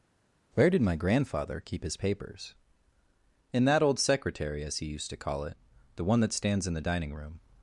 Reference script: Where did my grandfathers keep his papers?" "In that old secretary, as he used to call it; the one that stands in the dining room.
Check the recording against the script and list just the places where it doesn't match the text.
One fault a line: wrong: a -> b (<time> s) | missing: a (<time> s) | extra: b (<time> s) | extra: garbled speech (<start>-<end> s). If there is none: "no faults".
wrong: grandfathers -> grandfather (1.0 s)